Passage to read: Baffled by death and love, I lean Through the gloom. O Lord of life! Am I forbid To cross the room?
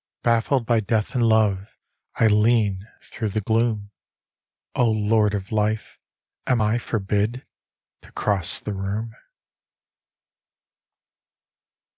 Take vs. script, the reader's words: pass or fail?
pass